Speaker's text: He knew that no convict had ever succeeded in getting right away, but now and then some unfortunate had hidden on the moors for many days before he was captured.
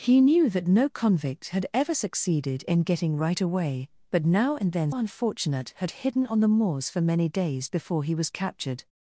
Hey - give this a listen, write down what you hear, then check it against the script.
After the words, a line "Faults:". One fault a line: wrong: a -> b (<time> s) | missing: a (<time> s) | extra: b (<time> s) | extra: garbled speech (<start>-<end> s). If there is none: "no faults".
He knew that no convict had ever succeeded in getting right away, but now and then unfortunate had hidden on the moors for many days before he was captured.
Faults:
missing: some (4.9 s)